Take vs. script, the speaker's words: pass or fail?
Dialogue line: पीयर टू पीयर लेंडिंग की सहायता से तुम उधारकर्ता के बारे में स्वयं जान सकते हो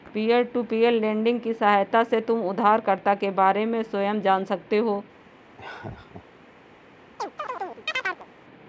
pass